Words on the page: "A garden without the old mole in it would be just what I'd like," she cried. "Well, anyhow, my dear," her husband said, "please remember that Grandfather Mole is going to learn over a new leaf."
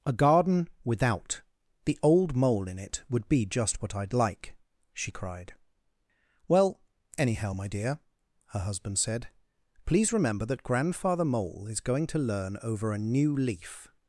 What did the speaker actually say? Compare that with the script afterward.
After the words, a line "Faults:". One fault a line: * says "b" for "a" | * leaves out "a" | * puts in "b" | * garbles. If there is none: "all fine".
"A garden without the old mole in it would be just what I'd like," she cried. "Well, anyhow, my dear," her husband said, "please remember that Grandfather Mole is going to learn over a new leaf."
Faults:
all fine